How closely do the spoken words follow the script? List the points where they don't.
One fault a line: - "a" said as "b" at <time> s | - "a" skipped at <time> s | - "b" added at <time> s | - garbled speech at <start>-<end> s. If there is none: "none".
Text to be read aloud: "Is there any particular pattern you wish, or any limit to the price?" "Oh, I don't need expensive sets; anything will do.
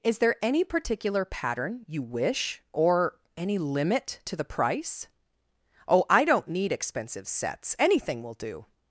none